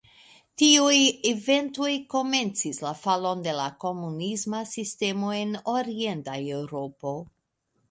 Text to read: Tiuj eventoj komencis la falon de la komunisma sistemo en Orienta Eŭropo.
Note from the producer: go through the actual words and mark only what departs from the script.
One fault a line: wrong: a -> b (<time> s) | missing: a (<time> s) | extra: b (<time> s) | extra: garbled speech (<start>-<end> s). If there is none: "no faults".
no faults